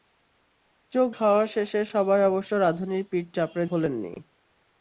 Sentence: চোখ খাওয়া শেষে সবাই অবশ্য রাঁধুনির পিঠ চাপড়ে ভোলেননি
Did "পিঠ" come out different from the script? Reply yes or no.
no